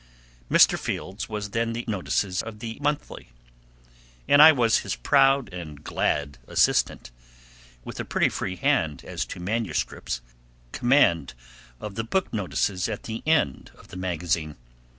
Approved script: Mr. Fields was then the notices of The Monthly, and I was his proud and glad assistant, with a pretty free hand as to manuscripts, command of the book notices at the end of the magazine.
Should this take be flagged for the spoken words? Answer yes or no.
no